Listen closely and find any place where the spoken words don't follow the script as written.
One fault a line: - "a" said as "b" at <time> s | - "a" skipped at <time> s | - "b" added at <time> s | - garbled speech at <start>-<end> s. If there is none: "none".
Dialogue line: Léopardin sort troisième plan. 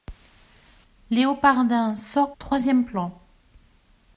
none